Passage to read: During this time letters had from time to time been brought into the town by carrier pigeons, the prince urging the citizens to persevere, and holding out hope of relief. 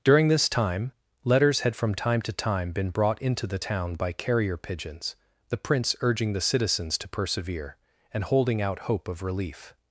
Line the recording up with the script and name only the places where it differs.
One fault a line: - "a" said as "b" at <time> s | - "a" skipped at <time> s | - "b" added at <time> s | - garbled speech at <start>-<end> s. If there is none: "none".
none